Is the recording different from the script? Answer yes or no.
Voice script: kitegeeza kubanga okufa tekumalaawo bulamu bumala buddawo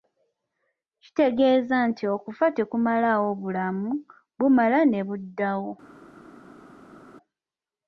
yes